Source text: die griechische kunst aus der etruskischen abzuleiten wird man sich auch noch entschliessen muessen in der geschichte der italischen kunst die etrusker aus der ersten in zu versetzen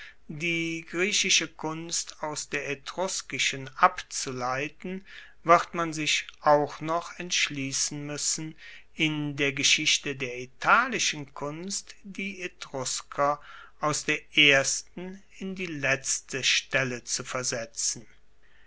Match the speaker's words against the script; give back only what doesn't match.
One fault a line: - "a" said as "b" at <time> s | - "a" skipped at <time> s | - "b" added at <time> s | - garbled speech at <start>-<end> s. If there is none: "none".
- "die letzte stelle" added at 15.5 s